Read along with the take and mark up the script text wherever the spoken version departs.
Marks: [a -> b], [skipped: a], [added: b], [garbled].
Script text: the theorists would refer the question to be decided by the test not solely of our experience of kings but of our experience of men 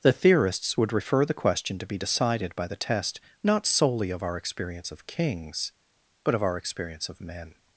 the theorists would refer the question to be decided by the test not solely of our experience of kings but of our experience of men